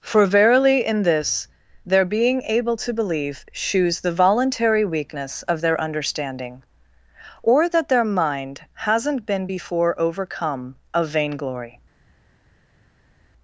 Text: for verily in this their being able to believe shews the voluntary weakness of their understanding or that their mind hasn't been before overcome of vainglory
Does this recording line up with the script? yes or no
yes